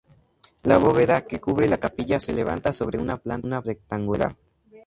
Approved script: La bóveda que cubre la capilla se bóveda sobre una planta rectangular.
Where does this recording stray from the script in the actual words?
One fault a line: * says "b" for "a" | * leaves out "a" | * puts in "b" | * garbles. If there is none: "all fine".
* says "levanta" for "bóveda"